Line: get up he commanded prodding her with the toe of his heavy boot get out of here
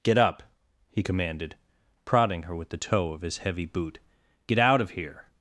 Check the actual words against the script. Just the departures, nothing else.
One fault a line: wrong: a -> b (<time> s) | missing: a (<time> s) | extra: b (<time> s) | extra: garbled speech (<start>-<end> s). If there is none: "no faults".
no faults